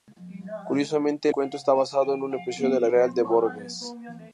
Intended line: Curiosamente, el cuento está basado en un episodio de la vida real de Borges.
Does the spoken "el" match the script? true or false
false